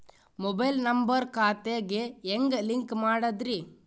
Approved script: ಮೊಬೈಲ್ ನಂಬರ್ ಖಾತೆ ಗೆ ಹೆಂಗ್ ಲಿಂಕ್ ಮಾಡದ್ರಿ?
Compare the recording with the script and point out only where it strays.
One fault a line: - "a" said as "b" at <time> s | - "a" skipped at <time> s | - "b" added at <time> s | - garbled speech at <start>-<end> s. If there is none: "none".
none